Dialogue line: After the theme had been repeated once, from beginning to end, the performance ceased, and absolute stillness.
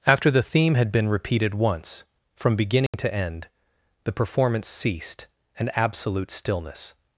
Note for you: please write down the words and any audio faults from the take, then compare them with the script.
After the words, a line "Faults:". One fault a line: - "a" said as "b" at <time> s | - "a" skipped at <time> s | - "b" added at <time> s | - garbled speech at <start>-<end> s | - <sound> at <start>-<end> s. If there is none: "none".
After the theme had been repeated once, from beginning to end, the performance ceased, and absolute stillness.
Faults:
- dropout at 2.9-2.9 s